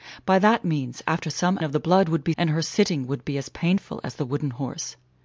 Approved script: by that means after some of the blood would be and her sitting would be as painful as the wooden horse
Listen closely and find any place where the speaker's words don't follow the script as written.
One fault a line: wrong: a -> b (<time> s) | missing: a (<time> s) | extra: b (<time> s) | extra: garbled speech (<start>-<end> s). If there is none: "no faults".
no faults